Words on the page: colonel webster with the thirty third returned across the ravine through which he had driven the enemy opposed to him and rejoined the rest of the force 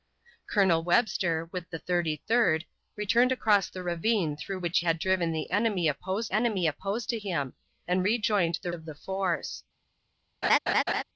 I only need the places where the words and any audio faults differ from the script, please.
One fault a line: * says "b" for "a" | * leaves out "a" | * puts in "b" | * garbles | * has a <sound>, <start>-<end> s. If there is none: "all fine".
* leaves out "he"
* puts in "enemy opposed"
* leaves out "rest"
* has a laugh, 10.4-11.0 s